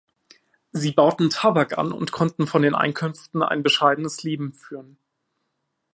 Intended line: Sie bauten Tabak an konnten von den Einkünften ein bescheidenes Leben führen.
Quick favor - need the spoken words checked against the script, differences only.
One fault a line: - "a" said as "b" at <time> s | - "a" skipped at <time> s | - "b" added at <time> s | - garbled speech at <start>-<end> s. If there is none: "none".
- "und" added at 1.9 s